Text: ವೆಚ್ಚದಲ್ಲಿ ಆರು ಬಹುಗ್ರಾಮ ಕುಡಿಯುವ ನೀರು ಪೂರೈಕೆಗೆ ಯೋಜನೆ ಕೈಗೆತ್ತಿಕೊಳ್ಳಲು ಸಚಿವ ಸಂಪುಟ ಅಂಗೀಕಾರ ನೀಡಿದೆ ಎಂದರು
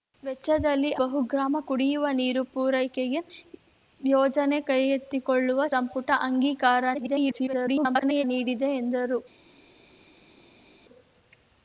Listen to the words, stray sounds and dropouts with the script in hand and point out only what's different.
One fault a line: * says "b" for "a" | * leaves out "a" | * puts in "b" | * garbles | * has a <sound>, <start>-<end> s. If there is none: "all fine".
* leaves out "ಆರು"
* leaves out "ಸಚಿವ"
* garbles